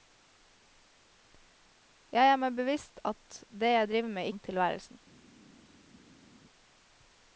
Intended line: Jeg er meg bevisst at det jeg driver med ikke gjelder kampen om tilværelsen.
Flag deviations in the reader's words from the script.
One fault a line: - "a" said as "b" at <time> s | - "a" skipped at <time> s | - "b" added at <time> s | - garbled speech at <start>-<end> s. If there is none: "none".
- "ikke gjelder kampen" skipped at 4.3 s